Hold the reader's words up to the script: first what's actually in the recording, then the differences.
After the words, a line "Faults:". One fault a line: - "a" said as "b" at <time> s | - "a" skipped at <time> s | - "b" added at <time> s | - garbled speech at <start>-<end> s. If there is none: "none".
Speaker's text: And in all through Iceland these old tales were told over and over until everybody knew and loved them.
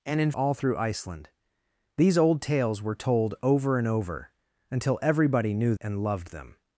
And in all through Iceland these old tales were told over and over until everybody knew and loved them.
Faults:
none